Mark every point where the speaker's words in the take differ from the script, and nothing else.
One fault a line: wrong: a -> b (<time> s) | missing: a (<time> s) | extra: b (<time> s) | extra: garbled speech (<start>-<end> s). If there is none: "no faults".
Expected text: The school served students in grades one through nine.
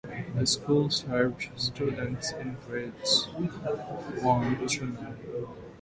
no faults